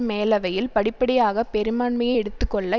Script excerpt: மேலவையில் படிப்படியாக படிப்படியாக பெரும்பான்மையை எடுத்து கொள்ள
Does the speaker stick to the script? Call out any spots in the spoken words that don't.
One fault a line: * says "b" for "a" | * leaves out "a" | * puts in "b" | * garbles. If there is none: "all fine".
* leaves out "படிப்படியாக"